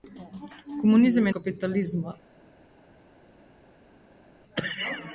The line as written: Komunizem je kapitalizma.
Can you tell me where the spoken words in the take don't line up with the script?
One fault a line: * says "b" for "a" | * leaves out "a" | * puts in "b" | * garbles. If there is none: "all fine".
all fine